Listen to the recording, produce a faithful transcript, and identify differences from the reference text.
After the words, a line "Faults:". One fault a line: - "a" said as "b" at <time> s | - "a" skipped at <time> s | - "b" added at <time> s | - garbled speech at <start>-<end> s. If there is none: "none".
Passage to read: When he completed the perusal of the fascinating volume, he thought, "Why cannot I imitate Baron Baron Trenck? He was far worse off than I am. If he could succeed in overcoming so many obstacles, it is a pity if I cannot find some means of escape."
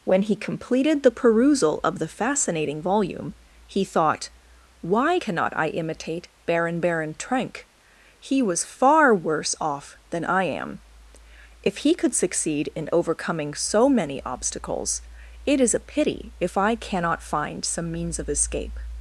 When he completed the perusal of the fascinating volume, he thought, "Why cannot I imitate Baron Baron Trenck? He was far worse off than I am. If he could succeed in overcoming so many obstacles, it is a pity if I cannot find some means of escape."
Faults:
none